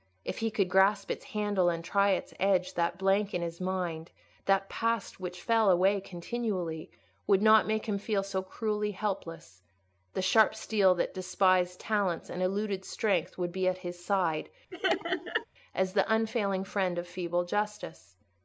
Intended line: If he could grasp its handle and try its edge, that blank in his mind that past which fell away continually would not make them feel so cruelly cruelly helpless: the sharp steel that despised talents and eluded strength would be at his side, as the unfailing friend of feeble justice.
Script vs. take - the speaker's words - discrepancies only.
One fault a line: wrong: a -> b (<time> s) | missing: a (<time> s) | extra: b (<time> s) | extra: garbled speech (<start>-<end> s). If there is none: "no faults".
wrong: them -> him (7.8 s)
missing: cruelly (8.9 s)